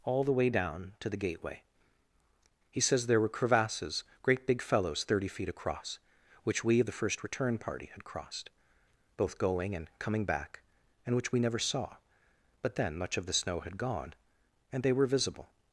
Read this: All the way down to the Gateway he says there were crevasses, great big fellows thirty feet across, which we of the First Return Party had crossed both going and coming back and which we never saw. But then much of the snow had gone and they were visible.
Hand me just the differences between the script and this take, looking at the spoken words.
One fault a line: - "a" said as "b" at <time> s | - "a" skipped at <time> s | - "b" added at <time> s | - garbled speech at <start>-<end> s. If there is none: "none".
none